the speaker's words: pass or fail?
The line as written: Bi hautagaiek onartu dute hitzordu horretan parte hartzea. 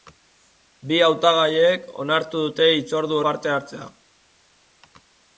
fail